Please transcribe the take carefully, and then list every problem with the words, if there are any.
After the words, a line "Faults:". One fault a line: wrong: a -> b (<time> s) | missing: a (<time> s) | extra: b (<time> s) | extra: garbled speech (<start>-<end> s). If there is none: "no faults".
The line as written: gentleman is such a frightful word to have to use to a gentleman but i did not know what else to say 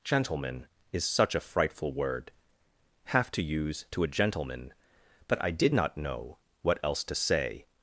gentleman is such a frightful word have to use to a gentleman but i did not know what else to say
Faults:
missing: to (2.3 s)